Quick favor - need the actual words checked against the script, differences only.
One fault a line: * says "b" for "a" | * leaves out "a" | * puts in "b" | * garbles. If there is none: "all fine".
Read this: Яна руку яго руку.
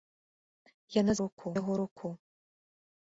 all fine